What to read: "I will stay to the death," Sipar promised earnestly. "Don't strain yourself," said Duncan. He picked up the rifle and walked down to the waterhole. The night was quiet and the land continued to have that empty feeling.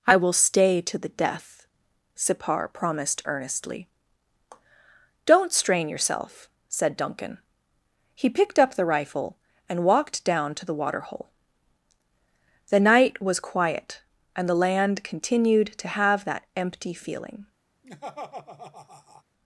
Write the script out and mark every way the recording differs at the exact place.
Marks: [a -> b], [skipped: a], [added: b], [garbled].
"I will stay to the death," Sipar promised earnestly. "Don't strain yourself," said Duncan. He picked up the rifle and walked down to the waterhole. The night was quiet and the land continued to have that empty feeling.